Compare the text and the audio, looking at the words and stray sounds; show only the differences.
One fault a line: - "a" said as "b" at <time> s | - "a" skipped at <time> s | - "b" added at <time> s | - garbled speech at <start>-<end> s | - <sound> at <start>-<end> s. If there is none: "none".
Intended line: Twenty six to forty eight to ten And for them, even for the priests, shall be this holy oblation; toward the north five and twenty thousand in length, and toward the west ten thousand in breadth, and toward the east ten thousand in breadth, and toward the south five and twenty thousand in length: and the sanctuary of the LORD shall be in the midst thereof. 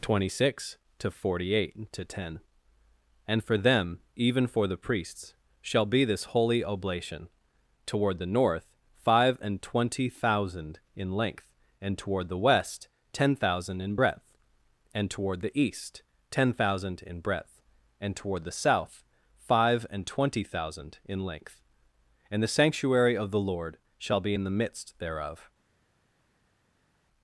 none